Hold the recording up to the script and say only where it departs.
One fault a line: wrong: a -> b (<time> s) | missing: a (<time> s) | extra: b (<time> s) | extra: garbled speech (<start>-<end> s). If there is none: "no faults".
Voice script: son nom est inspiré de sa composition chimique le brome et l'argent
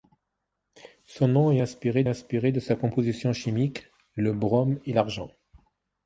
extra: inspiré (2.1 s)